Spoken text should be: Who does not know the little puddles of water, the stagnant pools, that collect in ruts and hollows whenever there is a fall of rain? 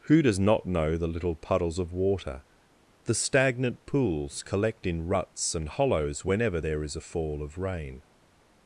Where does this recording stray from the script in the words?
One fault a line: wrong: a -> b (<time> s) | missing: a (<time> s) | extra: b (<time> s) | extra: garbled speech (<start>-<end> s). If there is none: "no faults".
missing: that (4.4 s)